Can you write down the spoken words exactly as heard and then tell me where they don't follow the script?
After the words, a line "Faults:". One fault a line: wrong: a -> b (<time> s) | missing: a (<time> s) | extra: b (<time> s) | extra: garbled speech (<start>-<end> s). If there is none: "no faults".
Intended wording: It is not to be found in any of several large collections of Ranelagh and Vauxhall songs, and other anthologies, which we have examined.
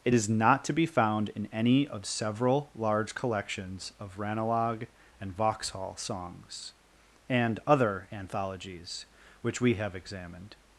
It is not to be found in any of several large collections of Ranelagh and Vauxhall songs, and other anthologies, which we have examined.
Faults:
no faults